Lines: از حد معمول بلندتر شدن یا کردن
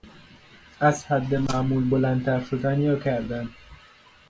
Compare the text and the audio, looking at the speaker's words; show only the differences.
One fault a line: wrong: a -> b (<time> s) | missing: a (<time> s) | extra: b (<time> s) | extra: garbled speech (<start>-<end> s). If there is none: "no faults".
no faults